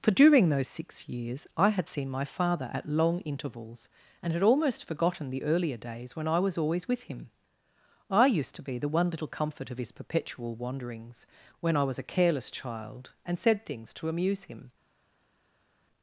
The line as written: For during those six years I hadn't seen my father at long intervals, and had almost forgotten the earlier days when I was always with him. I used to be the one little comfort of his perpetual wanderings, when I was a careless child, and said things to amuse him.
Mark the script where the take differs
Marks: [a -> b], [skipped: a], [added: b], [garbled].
For during those six years I [hadn't -> had] seen my father at long intervals, and had almost forgotten the earlier days when I was always with him. I used to be the one little comfort of his perpetual wanderings, when I was a careless child, and said things to amuse him.